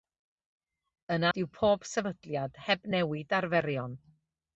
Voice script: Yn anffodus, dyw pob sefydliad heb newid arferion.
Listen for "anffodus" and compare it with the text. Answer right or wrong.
wrong